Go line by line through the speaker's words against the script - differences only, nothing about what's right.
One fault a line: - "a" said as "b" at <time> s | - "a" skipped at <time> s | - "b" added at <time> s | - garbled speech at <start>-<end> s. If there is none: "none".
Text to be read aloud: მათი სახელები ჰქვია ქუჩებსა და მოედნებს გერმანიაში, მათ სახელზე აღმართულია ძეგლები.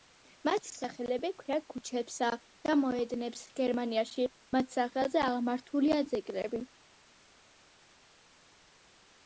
none